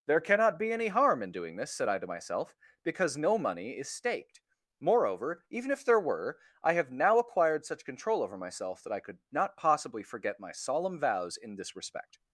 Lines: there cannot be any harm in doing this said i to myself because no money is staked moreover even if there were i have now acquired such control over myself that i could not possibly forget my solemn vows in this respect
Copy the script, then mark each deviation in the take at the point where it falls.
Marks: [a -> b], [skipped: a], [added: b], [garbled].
there cannot be any harm in doing this said i to myself because no money is staked moreover even if there were i have now acquired such control over myself that i could not possibly forget my solemn vows in this respect